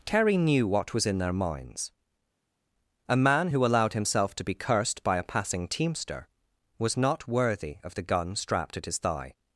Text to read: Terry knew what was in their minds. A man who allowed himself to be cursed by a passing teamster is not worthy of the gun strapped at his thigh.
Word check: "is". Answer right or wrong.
wrong